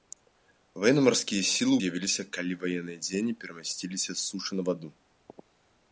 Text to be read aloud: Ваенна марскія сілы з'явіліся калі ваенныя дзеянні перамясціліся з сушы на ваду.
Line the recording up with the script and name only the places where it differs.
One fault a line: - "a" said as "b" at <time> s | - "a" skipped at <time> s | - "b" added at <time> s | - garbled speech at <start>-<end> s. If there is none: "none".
none